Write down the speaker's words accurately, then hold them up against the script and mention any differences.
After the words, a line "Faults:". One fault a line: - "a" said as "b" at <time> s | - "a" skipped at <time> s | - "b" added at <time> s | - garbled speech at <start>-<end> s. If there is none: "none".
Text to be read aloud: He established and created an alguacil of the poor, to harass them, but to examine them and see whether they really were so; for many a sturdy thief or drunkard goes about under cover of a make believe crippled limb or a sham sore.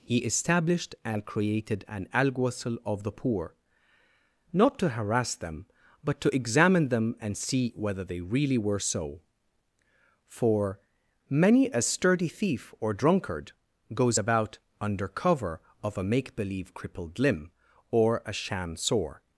He established and created an alguacil of the poor, not to harass them, but to examine them and see whether they really were so; for many a sturdy thief or drunkard goes about under cover of a make believe crippled limb or a sham sore.
Faults:
- "not" added at 4.5 s